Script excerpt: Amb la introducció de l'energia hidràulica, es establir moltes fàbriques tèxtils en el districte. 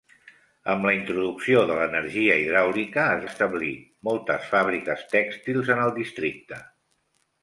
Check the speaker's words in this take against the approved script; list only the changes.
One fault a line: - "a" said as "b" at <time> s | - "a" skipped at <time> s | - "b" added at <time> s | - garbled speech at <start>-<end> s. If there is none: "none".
none